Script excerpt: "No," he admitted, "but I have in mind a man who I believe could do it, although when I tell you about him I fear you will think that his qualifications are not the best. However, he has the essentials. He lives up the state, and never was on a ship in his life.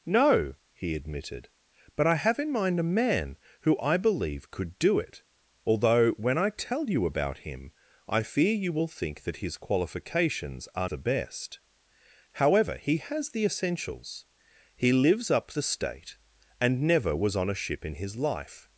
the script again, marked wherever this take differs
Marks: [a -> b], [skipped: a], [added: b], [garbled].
"No," he admitted, "but I have in mind a man who I believe could do it, although when I tell you about him I fear you will think that his qualifications are [skipped: not] the best. However, he has the essentials. He lives up the state, and never was on a ship in his life.